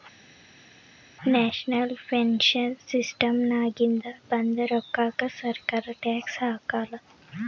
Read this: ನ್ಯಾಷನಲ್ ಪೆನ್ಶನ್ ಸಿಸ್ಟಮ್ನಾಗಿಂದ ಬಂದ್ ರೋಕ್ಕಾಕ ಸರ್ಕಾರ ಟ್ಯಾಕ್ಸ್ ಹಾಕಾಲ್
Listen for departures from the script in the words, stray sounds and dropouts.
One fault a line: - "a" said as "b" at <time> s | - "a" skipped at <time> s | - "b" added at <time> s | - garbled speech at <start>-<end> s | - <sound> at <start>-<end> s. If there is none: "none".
none